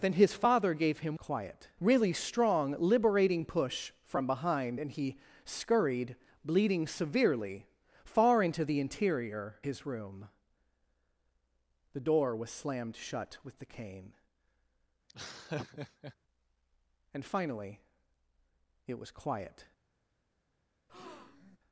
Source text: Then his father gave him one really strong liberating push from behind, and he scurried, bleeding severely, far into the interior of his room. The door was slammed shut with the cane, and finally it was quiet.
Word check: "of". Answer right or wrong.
wrong